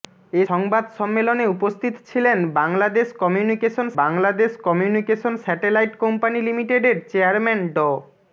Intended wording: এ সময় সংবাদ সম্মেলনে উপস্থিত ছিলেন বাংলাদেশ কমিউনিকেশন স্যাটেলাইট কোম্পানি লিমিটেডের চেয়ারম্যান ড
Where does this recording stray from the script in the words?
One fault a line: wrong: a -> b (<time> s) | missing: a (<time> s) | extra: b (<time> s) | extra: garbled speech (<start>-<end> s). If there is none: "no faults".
missing: সময় (0.4 s)
extra: বাংলাদেশ কমিউনিকেশন (4.0 s)